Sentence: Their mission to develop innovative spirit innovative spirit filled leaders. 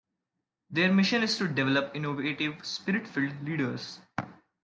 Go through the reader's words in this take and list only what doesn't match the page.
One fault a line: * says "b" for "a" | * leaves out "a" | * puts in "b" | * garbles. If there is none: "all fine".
* puts in "is"
* leaves out "innovative spirit"